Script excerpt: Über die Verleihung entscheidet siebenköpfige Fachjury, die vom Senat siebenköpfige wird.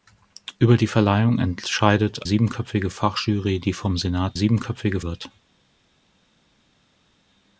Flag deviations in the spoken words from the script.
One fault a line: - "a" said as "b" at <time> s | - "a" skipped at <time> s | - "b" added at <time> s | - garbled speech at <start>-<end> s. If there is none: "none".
none